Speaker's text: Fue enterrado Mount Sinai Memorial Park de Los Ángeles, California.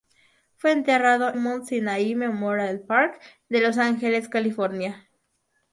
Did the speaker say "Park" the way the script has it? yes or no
yes